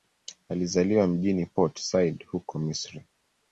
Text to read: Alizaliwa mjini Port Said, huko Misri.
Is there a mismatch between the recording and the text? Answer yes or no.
no